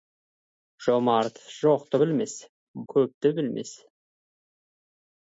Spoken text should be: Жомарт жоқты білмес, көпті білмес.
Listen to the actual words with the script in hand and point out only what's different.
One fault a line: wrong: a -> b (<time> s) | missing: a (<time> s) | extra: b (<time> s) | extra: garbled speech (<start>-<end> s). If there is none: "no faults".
no faults